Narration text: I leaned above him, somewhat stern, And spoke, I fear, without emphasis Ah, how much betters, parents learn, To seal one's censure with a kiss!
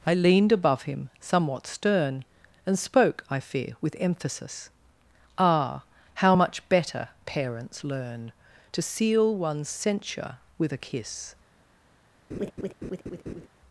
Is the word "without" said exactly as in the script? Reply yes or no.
no